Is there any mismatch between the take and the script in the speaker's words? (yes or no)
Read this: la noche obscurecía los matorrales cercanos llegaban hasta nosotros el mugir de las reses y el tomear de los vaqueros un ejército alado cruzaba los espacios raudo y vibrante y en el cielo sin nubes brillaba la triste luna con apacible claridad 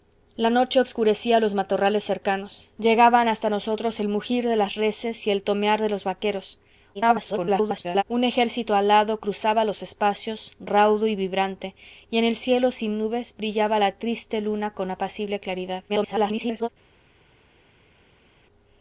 yes